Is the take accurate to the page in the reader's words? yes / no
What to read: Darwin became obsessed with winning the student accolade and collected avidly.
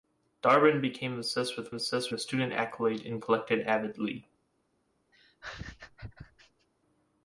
no